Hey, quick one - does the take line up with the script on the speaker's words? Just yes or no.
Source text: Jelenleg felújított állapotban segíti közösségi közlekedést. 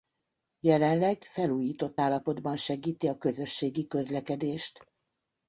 no